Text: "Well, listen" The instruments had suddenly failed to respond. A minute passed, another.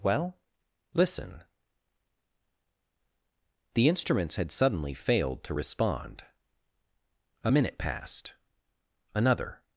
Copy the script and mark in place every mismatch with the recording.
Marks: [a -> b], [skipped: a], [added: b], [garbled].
"Well, listen" The instruments had suddenly failed to respond. A minute passed, another.